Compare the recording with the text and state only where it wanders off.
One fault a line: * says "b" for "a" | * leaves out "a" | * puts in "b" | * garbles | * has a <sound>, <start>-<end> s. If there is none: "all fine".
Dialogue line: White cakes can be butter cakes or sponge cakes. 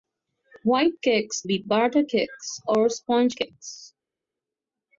* leaves out "can"